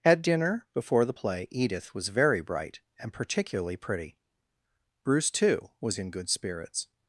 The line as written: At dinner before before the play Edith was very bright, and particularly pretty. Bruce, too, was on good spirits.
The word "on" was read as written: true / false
false